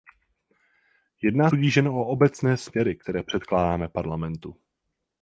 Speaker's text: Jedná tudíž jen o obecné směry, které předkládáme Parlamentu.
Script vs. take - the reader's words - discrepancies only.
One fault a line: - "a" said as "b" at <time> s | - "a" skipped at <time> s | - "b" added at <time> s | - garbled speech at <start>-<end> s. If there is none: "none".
none